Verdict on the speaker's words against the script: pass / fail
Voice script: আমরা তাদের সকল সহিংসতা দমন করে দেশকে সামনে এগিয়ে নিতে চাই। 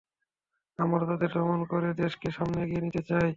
fail